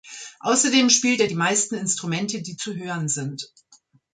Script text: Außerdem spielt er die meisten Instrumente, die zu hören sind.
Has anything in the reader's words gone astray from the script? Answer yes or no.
no